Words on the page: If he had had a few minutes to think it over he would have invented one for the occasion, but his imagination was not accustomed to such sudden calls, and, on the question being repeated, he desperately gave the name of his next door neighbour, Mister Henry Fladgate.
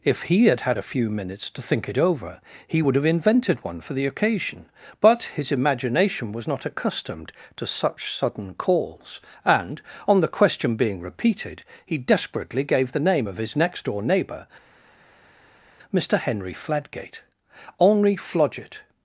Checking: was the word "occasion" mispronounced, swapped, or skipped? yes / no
no